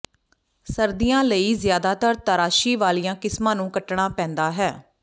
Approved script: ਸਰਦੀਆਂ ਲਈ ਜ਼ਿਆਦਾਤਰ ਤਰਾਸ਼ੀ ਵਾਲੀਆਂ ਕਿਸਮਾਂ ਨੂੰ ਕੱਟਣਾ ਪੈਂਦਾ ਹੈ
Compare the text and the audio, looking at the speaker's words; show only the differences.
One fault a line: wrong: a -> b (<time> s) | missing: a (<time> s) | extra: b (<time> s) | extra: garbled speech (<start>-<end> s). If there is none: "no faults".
no faults